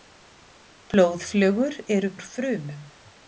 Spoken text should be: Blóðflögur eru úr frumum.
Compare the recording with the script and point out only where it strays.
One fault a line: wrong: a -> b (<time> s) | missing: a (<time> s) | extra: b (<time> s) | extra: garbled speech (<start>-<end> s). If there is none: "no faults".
no faults